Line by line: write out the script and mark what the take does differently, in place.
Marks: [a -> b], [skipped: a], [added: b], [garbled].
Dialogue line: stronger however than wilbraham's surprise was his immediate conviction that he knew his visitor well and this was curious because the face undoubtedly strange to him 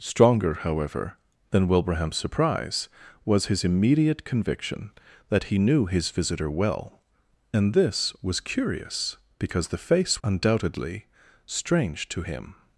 stronger however than wilbraham's surprise was his immediate conviction that he knew his visitor well and this was curious because the face undoubtedly strange to him